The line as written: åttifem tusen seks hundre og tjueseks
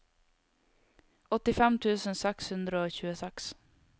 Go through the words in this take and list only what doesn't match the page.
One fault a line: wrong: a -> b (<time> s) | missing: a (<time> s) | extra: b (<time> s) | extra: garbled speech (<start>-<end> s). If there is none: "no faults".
no faults